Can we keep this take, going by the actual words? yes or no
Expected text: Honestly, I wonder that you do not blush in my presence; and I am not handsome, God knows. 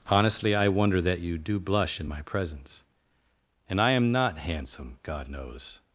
no